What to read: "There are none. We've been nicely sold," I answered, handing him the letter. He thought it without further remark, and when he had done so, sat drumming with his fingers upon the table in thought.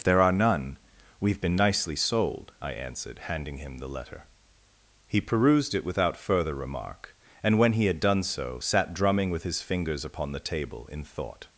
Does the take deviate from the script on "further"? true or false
false